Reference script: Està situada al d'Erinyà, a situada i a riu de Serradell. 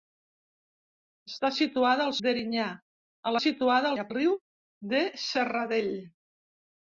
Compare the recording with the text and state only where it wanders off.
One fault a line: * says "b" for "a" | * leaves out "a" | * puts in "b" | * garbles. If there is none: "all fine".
all fine